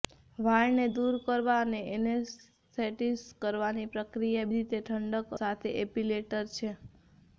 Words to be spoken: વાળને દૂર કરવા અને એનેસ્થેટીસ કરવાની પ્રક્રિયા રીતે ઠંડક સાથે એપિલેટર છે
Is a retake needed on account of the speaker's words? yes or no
no